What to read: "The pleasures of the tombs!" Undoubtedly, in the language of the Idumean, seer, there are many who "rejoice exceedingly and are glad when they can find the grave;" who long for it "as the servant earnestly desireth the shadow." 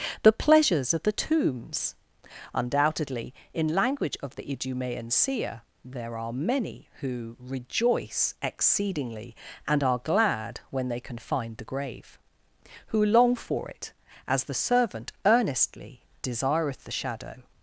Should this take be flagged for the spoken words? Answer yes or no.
yes